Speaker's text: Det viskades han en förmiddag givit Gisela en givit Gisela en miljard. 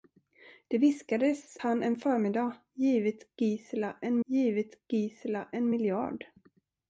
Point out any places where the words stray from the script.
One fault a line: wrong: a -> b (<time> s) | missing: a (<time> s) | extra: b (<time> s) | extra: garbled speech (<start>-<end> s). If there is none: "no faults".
no faults